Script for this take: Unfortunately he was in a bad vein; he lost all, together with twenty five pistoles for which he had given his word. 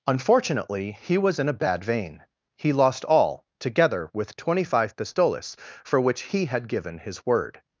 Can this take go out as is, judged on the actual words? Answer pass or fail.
pass